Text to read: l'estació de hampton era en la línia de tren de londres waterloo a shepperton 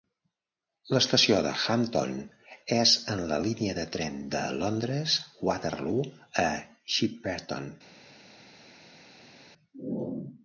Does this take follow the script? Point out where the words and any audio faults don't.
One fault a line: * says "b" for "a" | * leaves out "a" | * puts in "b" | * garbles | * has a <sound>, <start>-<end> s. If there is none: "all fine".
* says "és" for "era"